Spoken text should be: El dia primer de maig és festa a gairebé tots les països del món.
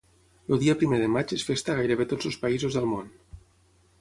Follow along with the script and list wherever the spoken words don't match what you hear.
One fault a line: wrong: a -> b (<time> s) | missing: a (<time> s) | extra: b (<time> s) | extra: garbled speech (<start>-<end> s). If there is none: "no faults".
wrong: les -> els (2.3 s)